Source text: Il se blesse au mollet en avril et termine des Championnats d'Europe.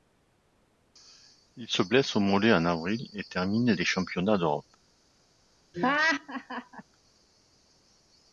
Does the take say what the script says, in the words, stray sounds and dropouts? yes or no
no